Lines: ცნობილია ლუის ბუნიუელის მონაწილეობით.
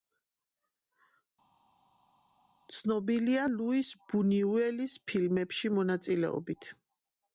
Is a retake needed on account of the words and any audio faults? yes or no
yes